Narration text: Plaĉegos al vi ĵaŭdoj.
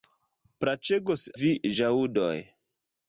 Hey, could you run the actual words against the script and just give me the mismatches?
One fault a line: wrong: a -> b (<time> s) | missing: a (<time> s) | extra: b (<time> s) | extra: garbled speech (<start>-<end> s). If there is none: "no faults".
missing: al (1.3 s)